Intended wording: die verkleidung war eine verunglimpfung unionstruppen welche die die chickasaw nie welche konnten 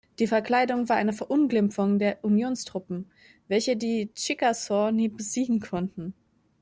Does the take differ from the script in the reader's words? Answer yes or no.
yes